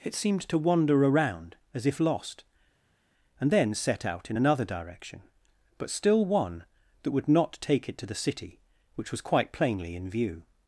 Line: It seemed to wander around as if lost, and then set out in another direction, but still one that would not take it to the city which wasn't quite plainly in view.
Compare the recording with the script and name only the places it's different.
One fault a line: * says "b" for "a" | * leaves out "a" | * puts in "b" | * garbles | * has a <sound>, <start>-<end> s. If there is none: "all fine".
* says "was" for "wasn't"